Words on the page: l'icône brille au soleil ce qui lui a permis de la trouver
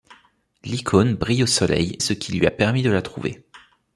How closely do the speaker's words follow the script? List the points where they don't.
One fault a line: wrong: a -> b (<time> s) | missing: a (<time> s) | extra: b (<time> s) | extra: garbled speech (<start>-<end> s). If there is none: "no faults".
no faults